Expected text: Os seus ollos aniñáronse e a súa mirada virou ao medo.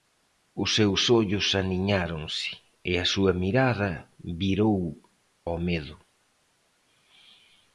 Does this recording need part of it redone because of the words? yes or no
no